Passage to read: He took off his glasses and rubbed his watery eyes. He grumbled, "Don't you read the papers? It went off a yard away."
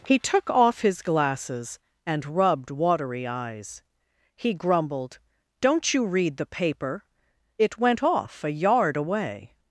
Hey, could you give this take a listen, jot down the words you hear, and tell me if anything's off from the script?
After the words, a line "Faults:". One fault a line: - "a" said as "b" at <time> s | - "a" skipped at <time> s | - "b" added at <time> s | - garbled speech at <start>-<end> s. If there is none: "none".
He took off his glasses and rubbed watery eyes. He grumbled, "Don't you read the paper? It went off a yard away."
Faults:
- "his" skipped at 2.7 s
- "papers" said as "paper" at 6.5 s